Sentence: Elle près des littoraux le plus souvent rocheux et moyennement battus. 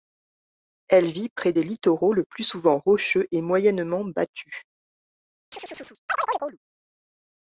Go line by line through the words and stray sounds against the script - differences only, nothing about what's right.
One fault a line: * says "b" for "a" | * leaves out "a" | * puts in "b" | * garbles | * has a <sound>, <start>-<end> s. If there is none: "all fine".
* puts in "vit"
* has a chirp, 5.5-6.6 s